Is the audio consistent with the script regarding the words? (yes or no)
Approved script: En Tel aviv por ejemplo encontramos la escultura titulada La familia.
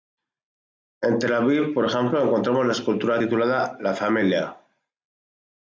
yes